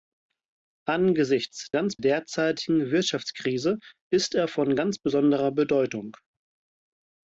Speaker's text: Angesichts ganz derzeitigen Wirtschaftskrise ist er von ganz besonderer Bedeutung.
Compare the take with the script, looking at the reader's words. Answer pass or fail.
pass